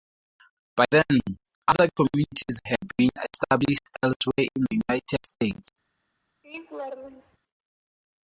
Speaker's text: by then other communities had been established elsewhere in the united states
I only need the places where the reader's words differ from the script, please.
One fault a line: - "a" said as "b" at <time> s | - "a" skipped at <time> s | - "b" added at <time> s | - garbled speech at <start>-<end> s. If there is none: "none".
none